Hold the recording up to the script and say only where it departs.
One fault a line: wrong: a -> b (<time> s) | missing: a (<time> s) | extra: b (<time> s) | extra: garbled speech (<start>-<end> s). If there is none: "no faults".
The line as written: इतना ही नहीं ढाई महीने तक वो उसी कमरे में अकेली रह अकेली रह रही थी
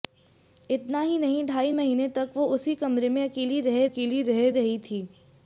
no faults